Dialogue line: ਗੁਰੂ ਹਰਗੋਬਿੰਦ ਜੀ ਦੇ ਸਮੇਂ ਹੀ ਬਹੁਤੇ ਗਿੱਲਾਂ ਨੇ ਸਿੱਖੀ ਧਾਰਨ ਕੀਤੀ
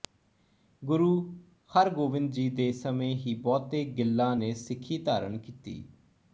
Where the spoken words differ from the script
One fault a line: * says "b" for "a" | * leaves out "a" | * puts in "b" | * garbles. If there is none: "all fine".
all fine